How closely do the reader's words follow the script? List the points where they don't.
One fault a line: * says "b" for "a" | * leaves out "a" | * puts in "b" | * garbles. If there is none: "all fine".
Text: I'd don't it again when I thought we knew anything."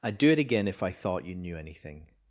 * says "do" for "don't"
* says "if" for "when"
* says "you" for "we"